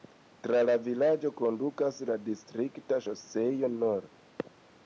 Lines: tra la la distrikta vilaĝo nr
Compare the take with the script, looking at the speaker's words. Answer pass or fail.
fail